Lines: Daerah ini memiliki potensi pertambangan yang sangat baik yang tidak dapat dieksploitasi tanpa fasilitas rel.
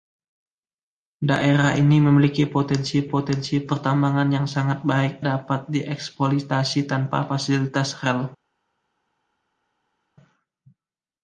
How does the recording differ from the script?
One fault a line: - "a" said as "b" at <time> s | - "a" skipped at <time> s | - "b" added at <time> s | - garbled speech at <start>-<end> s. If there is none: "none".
- "potensi" added at 3.1 s
- "yang tidak" skipped at 5.2 s